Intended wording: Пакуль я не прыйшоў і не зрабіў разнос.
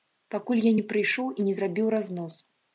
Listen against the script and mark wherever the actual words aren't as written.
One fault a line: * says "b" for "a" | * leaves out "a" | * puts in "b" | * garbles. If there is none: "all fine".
all fine